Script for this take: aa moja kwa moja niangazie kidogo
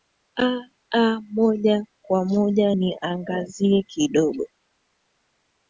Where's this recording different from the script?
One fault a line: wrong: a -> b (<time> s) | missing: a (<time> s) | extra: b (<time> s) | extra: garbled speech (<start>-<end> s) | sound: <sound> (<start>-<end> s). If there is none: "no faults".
no faults